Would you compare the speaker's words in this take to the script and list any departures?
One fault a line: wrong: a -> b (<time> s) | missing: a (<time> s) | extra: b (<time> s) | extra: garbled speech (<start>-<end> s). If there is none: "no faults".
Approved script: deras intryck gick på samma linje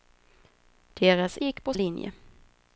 missing: intryck (1.4 s)
missing: samma (1.7 s)